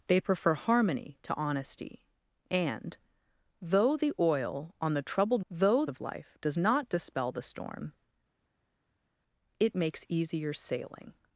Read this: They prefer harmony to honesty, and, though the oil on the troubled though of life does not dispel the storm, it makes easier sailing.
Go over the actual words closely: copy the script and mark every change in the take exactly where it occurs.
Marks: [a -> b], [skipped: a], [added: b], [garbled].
They prefer harmony to honesty, and, though the oil on the troubled though of life does not dispel the storm, it makes easier sailing.